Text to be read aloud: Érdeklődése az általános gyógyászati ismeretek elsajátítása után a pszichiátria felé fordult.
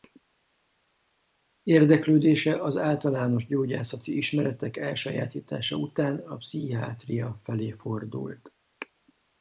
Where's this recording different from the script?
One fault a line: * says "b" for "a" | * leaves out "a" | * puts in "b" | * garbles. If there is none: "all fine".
all fine